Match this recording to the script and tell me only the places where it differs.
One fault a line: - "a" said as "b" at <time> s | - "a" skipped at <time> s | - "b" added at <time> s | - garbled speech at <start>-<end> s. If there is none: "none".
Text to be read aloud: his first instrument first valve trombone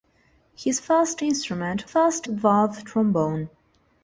none